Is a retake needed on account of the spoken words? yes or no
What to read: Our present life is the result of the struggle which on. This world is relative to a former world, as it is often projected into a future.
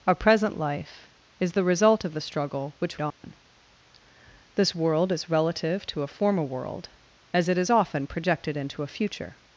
no